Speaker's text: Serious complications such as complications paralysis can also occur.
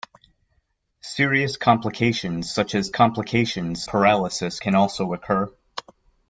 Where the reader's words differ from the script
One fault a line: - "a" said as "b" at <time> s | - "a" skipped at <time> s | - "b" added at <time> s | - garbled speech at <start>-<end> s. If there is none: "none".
none